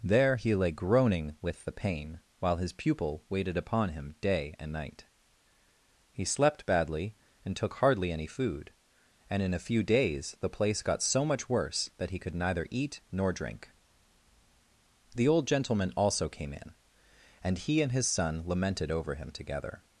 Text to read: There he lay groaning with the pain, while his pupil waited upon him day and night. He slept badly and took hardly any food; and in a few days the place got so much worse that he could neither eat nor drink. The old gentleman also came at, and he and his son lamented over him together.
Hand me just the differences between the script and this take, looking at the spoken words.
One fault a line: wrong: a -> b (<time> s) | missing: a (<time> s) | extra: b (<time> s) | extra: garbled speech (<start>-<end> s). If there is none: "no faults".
wrong: at -> in (16.5 s)